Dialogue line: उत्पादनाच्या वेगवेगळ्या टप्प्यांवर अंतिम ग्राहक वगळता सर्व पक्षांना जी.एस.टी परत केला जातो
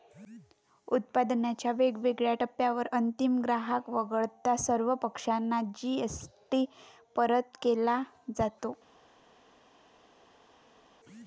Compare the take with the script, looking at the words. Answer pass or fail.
pass